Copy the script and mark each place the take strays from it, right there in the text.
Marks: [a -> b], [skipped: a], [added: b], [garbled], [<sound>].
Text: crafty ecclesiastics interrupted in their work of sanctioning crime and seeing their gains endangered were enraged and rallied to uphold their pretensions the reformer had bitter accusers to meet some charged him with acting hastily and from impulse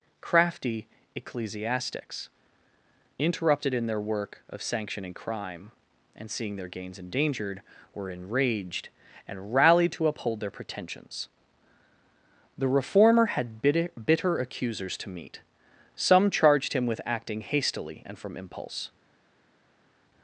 crafty ecclesiastics interrupted in their work of sanctioning crime and seeing their gains endangered were enraged and rallied to uphold their pretensions the reformer had bitter [added: bitter] accusers to meet some charged him with acting hastily and from impulse